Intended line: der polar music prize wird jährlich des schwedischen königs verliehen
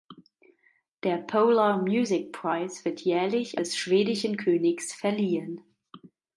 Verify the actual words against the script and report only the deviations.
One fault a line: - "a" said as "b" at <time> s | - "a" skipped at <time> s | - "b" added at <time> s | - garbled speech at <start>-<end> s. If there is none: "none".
none